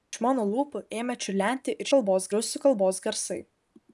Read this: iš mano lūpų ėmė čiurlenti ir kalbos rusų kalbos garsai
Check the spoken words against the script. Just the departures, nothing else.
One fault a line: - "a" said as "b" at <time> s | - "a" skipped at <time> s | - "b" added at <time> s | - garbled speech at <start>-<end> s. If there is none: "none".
none